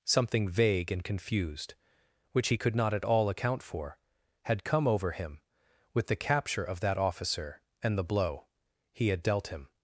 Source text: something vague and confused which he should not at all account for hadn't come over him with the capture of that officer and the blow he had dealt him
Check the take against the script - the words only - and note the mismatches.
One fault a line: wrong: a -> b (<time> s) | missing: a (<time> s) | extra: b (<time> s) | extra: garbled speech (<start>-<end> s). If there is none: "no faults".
wrong: should -> could (2.6 s)
wrong: hadn't -> had (4.4 s)